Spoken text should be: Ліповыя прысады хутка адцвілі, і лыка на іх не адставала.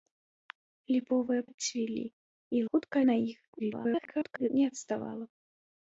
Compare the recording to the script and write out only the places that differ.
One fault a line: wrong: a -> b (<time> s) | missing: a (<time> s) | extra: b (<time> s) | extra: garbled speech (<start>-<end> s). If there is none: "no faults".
missing: прысады хутка (1.4 s)
wrong: лыка -> хутка (2.7 s)
extra: garbled speech (3.6-4.5 s)